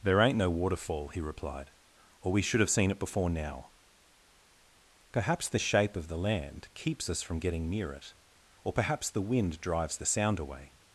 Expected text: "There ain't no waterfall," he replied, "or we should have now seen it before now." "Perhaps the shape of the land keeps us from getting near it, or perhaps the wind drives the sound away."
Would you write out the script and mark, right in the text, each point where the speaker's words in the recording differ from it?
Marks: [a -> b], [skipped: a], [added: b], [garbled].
"There ain't no waterfall," he replied, "or we should have [skipped: now] seen it before now." "Perhaps the shape of the land keeps us from getting near it, or perhaps the wind drives the sound away."